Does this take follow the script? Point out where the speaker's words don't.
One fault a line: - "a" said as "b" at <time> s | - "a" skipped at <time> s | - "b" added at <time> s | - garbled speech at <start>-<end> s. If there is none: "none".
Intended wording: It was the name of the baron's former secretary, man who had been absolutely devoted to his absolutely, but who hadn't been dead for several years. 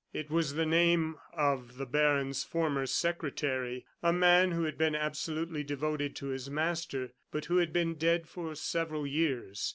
- "a" added at 4.0 s
- "absolutely" said as "master" at 6.5 s
- "hadn't" said as "had" at 7.6 s